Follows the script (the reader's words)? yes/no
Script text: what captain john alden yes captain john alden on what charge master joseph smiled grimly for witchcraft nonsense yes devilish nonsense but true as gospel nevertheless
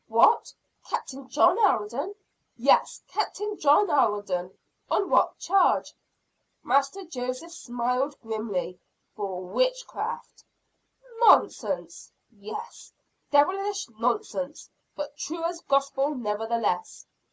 yes